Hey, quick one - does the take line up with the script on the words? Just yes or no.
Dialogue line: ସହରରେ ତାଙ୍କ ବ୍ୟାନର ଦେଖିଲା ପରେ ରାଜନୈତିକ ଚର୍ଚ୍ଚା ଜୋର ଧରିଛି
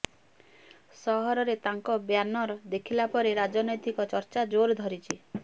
yes